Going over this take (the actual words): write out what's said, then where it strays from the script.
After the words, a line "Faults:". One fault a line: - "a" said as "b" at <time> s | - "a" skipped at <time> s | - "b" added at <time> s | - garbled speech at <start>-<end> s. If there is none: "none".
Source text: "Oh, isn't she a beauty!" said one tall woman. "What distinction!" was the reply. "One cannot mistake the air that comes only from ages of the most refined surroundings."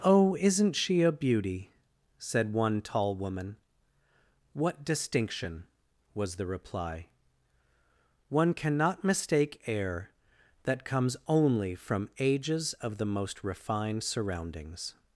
"Oh, isn't she a beauty!" said one tall woman. "What distinction!" was the reply. "One cannot mistake air that comes only from ages of the most refined surroundings."
Faults:
- "the" skipped at 9.6 s